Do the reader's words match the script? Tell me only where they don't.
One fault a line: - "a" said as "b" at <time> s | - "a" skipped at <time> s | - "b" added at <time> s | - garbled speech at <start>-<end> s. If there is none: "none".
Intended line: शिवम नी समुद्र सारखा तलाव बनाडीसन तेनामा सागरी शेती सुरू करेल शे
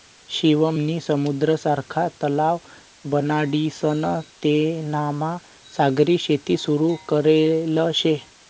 none